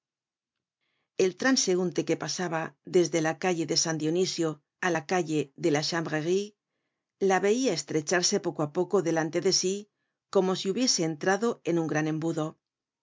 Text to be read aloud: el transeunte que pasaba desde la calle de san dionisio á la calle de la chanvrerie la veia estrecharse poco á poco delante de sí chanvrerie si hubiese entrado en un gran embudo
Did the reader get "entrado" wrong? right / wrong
right